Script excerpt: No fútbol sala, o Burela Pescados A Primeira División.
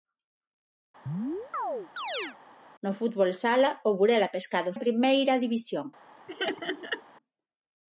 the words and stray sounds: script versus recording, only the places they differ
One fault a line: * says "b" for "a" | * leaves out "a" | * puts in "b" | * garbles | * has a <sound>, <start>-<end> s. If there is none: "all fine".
* has a chirp, 1.1-2.4 s
* has a laugh, 6.3-7.0 s